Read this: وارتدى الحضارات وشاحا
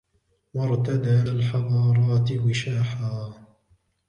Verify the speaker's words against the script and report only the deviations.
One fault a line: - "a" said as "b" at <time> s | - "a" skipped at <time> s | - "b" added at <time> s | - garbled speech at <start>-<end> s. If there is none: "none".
none